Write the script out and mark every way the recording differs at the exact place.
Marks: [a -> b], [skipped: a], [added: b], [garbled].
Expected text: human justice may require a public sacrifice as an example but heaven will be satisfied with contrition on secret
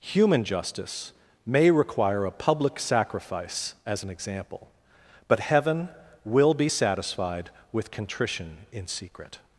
human justice may require a public sacrifice as an example but heaven will be satisfied with contrition [on -> in] secret